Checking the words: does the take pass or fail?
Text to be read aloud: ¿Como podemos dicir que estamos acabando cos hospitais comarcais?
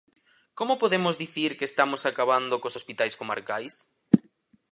pass